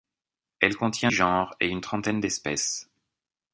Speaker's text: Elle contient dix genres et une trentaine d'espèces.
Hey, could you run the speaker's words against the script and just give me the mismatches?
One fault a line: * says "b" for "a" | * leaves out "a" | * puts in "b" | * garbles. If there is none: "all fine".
* leaves out "dix"